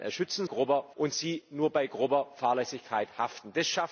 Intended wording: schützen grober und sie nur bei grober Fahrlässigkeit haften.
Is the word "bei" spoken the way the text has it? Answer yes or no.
yes